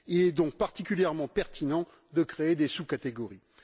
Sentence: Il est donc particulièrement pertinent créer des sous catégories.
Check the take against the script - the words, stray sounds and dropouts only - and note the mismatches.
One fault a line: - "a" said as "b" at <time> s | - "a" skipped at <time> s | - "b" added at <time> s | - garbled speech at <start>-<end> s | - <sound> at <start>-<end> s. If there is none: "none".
- "de" added at 2.1 s